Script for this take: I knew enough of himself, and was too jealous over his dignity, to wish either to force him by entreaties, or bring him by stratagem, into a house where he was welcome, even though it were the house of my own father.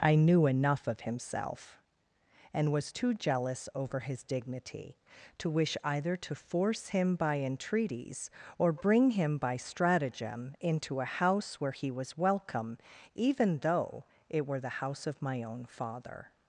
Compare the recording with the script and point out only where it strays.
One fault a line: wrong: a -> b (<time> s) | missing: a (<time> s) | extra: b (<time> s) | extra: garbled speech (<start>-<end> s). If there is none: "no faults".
no faults